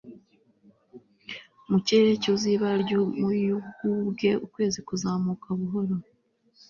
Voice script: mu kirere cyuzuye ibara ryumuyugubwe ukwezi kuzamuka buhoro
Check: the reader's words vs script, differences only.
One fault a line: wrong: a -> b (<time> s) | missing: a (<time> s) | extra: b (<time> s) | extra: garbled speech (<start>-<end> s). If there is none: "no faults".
no faults